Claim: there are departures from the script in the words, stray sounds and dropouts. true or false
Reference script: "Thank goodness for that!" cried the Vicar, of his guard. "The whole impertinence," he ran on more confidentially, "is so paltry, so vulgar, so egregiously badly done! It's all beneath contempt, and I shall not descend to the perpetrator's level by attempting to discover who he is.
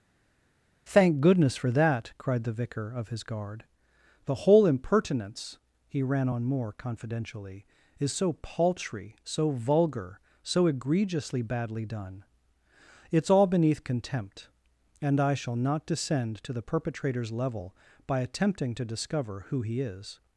false